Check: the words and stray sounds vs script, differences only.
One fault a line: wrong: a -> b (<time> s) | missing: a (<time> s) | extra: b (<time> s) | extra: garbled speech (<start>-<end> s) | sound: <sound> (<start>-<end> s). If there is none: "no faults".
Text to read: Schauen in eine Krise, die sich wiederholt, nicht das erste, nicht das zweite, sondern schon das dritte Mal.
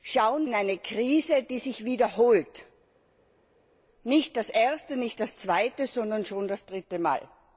no faults